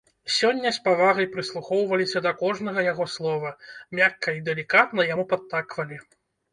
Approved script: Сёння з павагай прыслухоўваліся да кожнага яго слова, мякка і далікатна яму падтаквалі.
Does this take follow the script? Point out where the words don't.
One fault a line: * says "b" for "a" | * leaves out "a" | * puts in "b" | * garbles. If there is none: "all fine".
all fine